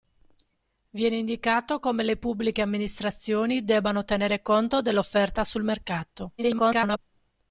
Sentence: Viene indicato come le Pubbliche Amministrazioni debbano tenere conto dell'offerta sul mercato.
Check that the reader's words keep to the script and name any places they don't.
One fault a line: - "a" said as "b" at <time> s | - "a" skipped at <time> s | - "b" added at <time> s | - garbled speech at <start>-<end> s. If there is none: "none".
- garbled speech at 6.4-7.0 s